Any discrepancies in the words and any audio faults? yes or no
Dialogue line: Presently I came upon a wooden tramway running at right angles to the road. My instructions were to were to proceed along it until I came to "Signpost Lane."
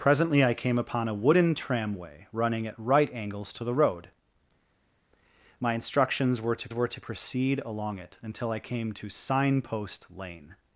no